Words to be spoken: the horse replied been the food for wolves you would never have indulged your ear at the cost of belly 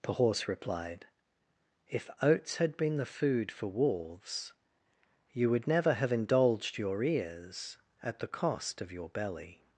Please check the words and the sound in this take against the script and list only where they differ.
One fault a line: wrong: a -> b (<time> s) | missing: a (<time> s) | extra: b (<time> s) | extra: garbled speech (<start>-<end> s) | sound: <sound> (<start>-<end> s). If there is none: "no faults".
extra: if oats had (1.9 s)
wrong: ear -> ears (7.0 s)
extra: your (8.9 s)